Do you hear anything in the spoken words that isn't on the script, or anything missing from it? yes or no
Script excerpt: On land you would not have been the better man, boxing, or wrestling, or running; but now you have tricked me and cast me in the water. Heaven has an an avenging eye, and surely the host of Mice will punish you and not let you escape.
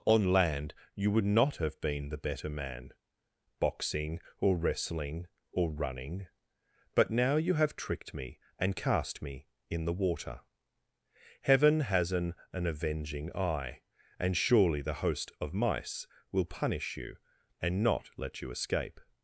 no